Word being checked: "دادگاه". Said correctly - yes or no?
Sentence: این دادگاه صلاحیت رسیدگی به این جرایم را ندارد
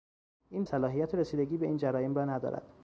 no